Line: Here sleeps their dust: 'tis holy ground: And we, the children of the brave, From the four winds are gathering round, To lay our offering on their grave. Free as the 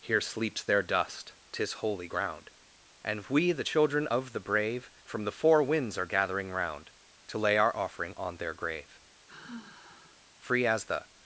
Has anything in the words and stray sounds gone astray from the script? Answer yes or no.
yes